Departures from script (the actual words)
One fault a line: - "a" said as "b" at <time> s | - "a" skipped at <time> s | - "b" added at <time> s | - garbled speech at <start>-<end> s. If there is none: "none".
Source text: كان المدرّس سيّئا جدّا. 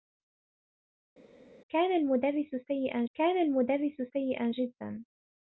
- "كان المدرّس سيّئا" added at 3.2 s